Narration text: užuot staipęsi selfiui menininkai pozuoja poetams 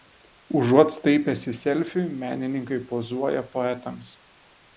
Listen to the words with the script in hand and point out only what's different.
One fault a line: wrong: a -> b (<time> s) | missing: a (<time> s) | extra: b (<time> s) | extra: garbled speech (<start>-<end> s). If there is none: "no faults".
no faults